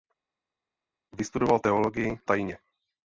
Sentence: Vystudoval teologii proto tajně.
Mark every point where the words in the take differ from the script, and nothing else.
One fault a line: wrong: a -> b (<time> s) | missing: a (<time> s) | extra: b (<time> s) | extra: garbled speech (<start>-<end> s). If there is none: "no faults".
missing: proto (2.2 s)